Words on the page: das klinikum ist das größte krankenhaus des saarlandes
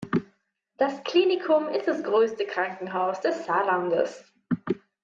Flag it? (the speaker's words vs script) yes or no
no